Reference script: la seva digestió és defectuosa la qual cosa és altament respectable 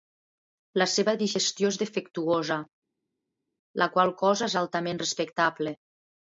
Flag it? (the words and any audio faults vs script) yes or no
no